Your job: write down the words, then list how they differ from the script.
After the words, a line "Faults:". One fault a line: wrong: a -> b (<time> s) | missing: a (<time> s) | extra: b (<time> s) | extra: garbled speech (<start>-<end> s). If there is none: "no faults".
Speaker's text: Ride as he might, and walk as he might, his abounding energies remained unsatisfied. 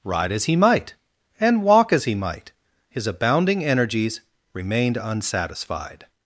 Ride as he might, and walk as he might, his abounding energies remained unsatisfied.
Faults:
no faults